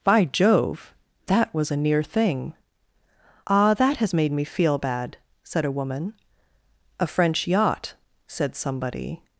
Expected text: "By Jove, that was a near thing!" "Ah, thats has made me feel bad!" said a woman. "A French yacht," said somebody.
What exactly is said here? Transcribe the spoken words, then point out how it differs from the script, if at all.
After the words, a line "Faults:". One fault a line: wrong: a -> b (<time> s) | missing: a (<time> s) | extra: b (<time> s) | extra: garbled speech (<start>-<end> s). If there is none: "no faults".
"By Jove, that was a near thing!" "Ah, that has made me feel bad!" said a woman. "A French yacht," said somebody.
Faults:
wrong: thats -> that (3.7 s)